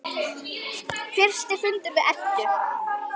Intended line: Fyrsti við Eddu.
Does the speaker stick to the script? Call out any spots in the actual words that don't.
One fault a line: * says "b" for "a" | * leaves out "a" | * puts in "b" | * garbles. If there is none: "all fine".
* puts in "fundur"